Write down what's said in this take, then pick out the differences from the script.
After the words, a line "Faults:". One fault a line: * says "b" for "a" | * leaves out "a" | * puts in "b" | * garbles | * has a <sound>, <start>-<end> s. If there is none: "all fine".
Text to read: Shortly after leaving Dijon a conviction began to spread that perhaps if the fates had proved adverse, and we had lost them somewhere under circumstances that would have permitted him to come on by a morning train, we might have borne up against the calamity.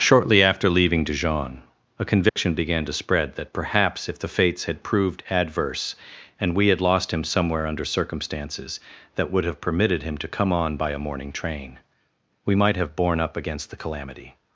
Shortly after leaving Dijon a conviction began to spread that perhaps if the fates had proved adverse, and we had lost him somewhere under circumstances that would have permitted him to come on by a morning train, we might have borne up against the calamity.
Faults:
* has a dropout, 2.3-2.4 s
* says "him" for "them"